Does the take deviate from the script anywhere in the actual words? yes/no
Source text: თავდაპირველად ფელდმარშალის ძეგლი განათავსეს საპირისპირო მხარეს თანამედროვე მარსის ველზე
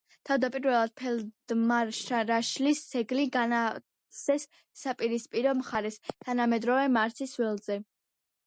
no